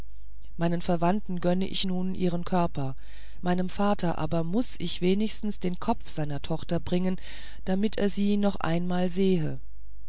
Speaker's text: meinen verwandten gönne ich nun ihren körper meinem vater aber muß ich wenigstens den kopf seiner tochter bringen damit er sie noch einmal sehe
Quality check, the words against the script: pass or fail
pass